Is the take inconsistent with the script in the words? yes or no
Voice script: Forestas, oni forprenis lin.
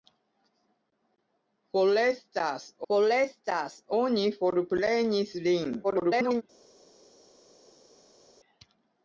yes